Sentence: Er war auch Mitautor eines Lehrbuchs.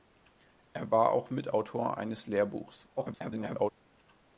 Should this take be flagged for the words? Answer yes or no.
yes